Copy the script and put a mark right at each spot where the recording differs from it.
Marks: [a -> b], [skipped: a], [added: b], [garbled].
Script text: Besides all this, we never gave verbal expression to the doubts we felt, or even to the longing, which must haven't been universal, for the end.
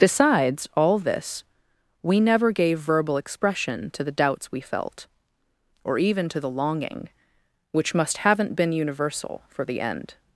Besides all this, we never gave verbal expression to the doubts we felt, or even to the longing, which must haven't been universal, for the end.